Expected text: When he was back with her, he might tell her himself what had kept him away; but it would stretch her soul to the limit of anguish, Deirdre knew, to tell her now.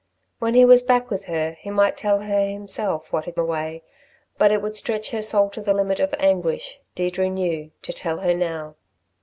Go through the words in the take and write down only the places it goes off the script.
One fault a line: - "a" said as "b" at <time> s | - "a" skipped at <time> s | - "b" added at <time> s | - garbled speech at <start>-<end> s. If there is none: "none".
- "kept him" skipped at 3.4 s